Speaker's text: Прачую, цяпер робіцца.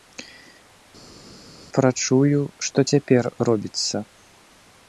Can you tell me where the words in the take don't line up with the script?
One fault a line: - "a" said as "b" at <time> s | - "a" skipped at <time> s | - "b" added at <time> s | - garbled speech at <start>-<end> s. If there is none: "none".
- "што" added at 2.7 s